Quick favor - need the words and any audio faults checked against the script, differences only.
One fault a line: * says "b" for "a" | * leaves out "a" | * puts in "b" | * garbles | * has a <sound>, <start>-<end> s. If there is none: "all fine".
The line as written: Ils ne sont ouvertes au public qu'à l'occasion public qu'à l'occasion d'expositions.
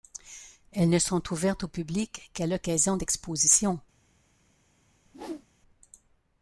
* says "Elles" for "Ils"
* leaves out "public qu'à l'occasion"
* has a whoosh, 5.0-5.5 s